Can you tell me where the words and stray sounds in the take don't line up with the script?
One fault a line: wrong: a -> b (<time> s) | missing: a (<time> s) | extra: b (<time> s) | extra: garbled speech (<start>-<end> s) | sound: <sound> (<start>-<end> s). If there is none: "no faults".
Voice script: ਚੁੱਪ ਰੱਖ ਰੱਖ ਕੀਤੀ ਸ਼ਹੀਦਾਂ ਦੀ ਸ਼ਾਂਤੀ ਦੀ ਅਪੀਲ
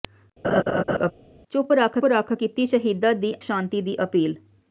sound: laugh (0.4-1.1 s)